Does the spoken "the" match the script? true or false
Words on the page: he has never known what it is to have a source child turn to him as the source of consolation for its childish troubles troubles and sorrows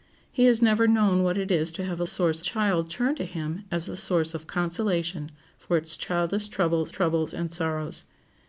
true